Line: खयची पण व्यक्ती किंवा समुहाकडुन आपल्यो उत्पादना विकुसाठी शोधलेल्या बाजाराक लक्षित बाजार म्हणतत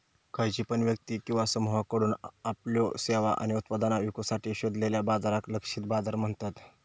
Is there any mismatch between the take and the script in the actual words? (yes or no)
yes